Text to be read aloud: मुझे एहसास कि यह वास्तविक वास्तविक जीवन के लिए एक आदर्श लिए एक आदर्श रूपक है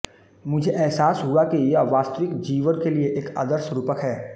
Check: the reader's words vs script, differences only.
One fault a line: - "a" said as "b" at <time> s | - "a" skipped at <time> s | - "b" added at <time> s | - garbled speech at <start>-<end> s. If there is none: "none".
- "हुआ" added at 1.2 s
- "वास्तविक" skipped at 2.4 s
- "लिए एक आदर्श" skipped at 3.7 s